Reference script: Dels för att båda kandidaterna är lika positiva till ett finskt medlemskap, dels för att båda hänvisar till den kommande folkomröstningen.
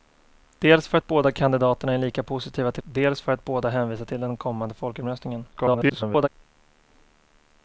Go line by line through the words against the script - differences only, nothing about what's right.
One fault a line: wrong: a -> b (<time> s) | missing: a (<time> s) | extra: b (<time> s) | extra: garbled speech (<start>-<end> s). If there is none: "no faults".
missing: ett finskt medlemskap (2.8 s)
extra: garbled speech (5.5-6.3 s)